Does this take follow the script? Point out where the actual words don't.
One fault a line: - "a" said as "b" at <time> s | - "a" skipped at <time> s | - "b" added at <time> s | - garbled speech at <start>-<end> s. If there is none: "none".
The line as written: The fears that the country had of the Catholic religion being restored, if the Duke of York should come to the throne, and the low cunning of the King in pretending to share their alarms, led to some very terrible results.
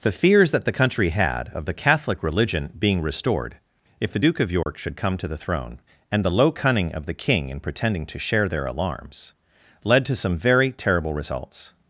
none